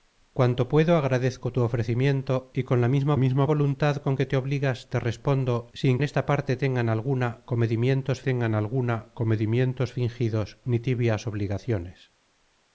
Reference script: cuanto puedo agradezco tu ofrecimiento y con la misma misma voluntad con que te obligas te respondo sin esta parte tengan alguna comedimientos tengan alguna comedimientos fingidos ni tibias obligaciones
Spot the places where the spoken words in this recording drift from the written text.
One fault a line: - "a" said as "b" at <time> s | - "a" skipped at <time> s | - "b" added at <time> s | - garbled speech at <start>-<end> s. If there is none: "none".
none